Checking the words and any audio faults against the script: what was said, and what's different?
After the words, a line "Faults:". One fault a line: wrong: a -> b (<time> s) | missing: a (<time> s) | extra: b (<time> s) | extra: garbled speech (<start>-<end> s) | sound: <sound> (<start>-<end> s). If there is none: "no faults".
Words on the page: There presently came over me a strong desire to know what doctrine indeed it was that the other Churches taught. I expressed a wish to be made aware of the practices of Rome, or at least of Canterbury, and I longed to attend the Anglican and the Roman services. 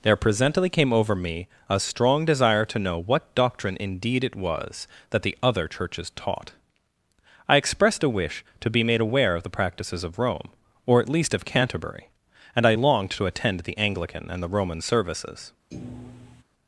There presently came over me a strong desire to know what doctrine indeed it was that the other Churches taught. I expressed a wish to be made aware of the practices of Rome, or at least of Canterbury, and I longed to attend the Anglican and the Roman services.
Faults:
sound: thud (15.7-16.4 s)